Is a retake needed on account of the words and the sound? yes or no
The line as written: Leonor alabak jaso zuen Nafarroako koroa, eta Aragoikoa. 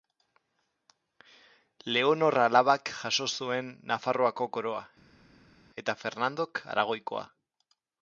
yes